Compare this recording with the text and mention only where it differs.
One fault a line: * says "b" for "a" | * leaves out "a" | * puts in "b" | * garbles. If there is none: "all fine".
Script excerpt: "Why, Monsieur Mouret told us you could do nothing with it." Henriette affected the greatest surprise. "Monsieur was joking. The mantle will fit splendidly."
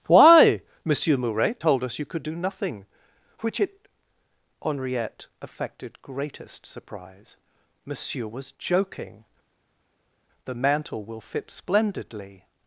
* says "which" for "with"
* leaves out "the"